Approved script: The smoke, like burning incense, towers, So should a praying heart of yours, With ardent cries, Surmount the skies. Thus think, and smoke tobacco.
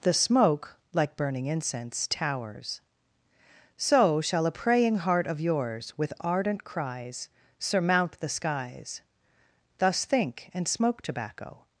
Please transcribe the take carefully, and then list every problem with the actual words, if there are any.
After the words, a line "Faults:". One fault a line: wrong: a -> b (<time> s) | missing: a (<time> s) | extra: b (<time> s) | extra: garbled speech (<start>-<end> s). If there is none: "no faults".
The smoke, like burning incense, towers, So shall a praying heart of yours, With ardent cries, Surmount the skies. Thus think, and smoke tobacco.
Faults:
wrong: should -> shall (4.2 s)